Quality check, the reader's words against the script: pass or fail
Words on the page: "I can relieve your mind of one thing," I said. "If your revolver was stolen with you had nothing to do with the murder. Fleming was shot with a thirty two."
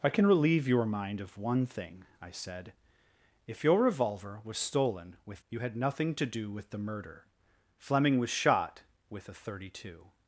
pass